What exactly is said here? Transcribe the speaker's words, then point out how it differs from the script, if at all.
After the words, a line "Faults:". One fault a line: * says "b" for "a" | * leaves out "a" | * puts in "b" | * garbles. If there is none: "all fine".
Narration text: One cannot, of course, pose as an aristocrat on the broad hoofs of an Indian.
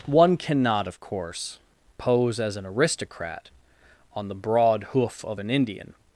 One cannot, of course, pose as an aristocrat on the broad hoof of an Indian.
Faults:
* says "hoof" for "hoofs"